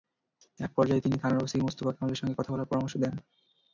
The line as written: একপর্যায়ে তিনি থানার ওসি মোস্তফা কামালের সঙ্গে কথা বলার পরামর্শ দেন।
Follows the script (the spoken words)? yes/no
yes